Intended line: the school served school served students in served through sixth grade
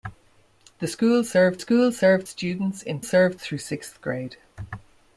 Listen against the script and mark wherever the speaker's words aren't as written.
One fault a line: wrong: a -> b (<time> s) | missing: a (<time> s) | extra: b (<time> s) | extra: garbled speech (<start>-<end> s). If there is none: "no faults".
no faults